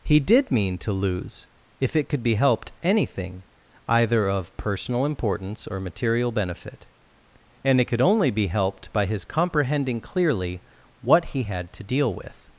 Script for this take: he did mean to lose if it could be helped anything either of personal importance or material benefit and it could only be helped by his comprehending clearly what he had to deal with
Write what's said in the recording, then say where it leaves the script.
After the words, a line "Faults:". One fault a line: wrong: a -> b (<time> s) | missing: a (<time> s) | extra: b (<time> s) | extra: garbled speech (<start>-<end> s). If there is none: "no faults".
he did mean to lose if it could be helped anything either of personal importance or material benefit and it could only be helped by his comprehending clearly what he had to deal with
Faults:
no faults